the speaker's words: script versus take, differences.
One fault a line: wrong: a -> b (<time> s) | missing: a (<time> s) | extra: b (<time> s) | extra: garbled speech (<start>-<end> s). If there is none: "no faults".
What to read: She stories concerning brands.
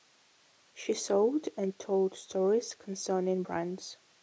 extra: sold and told (0.9 s)